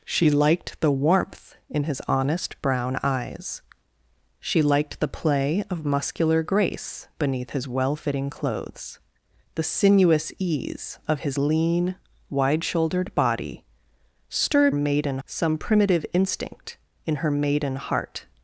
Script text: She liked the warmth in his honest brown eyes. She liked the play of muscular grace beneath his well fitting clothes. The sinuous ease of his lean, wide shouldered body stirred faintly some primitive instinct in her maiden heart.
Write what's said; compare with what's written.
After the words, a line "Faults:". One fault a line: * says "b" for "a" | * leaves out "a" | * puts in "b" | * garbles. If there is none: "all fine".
She liked the warmth in his honest brown eyes. She liked the play of muscular grace beneath his well fitting clothes. The sinuous ease of his lean, wide shouldered body stirred maiden some primitive instinct in her maiden heart.
Faults:
* says "maiden" for "faintly"